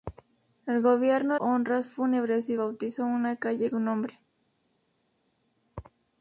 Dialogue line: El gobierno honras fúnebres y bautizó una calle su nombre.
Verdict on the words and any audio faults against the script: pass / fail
pass